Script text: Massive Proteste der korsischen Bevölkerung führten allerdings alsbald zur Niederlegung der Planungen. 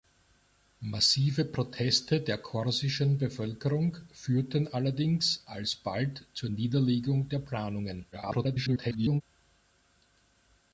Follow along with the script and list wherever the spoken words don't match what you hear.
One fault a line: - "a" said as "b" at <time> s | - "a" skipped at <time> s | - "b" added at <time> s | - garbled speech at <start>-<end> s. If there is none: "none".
- garbled speech at 8.1-9.2 s